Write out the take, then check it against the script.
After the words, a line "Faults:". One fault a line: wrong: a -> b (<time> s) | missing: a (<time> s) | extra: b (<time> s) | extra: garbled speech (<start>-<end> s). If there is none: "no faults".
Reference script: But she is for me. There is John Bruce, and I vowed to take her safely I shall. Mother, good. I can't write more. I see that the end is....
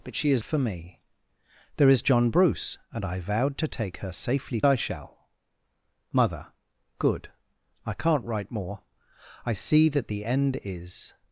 But she is for me. There is John Bruce, and I vowed to take her safely I shall. Mother, good. I can't write more. I see that the end is....
Faults:
no faults